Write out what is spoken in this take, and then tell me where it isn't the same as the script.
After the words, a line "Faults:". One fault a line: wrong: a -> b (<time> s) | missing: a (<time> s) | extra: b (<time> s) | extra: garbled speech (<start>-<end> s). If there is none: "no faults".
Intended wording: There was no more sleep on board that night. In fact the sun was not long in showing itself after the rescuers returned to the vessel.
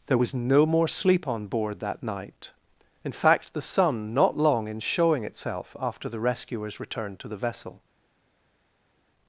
There was no more sleep on board that night. In fact the sun not long in showing itself after the rescuers returned to the vessel.
Faults:
missing: was (4.1 s)